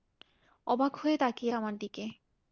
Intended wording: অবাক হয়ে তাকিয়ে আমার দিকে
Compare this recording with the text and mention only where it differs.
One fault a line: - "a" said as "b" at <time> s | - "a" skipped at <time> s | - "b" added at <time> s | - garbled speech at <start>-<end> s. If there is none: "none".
none